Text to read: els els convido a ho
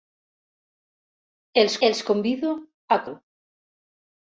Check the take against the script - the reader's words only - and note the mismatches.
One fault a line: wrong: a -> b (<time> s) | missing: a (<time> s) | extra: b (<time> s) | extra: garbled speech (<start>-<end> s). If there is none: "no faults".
no faults